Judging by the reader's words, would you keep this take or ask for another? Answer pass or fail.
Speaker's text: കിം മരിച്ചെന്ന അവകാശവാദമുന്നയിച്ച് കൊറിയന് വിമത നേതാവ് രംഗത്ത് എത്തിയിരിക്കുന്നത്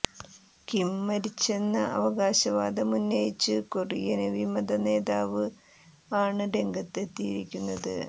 fail